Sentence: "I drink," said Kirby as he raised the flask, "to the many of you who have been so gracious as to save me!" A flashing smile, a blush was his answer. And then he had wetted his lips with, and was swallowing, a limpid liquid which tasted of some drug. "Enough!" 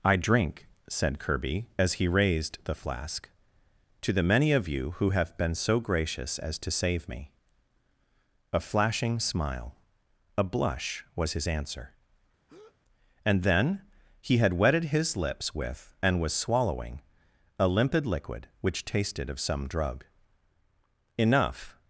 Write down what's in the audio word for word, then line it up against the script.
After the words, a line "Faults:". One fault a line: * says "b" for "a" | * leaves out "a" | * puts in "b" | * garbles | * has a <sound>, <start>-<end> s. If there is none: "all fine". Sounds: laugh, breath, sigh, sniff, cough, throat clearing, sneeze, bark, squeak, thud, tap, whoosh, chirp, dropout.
"I drink," said Kirby as he raised the flask, "to the many of you who have been so gracious as to save me!" A flashing smile, a blush was his answer. And then he had wetted his lips with, and was swallowing, a limpid liquid which tasted of some drug. "Enough!"
Faults:
* has a breath, 12.5-12.8 s